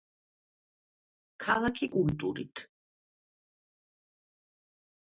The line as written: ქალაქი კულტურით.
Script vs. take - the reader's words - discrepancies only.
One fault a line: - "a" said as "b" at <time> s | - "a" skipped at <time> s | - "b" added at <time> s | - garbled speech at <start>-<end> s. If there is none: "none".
none